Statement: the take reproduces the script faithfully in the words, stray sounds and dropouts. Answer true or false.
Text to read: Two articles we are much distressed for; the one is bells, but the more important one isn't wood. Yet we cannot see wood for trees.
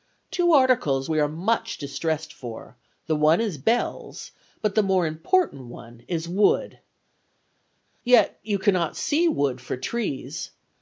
false